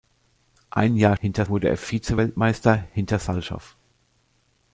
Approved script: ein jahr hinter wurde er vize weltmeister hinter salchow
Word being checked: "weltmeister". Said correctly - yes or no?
yes